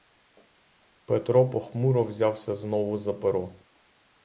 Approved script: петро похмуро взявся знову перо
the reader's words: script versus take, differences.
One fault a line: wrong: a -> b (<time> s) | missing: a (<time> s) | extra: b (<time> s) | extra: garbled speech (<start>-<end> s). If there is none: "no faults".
extra: за (3.0 s)